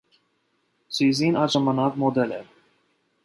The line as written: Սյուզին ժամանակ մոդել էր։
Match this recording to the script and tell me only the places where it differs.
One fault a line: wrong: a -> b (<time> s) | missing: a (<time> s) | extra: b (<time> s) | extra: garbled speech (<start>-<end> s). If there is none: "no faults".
extra: այդ (1.4 s)